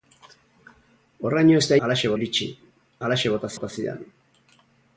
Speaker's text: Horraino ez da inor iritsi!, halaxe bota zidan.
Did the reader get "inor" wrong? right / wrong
wrong